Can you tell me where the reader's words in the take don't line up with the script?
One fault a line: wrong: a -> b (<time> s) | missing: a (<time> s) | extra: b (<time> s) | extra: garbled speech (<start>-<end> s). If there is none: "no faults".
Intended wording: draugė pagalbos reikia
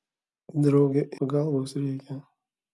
no faults